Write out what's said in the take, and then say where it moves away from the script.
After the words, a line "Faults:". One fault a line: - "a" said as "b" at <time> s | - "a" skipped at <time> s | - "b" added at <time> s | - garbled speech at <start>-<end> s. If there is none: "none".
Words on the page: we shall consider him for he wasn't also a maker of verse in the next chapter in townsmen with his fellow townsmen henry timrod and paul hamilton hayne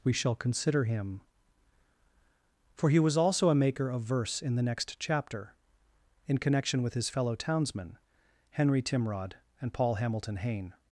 we shall consider him for he was also a maker of verse in the next chapter in connection with his fellow townsmen henry timrod and paul hamilton hayne
Faults:
- "wasn't" said as "was" at 3.0 s
- "townsmen" said as "connection" at 6.4 s